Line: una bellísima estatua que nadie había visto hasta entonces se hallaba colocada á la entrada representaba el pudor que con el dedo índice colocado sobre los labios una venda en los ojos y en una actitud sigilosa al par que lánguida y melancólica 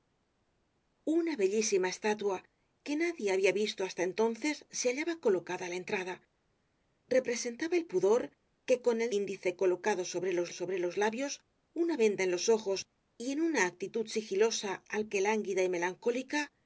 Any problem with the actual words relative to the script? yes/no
yes